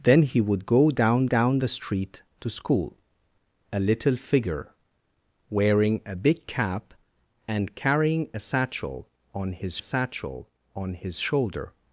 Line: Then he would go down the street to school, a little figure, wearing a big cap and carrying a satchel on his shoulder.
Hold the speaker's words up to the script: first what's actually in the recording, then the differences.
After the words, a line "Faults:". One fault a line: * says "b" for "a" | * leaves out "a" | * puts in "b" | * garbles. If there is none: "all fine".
Then he would go down down the street to school, a little figure, wearing a big cap and carrying a satchel on his satchel on his shoulder.
Faults:
* puts in "down"
* puts in "satchel on his"